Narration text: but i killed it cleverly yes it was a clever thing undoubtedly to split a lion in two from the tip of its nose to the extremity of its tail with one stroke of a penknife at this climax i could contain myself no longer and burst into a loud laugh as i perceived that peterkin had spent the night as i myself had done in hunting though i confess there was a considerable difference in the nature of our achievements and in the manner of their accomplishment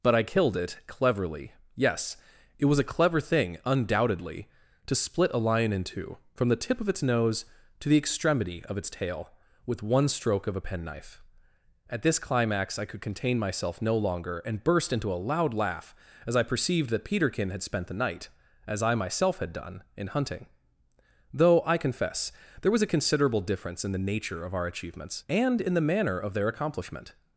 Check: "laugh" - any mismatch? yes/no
no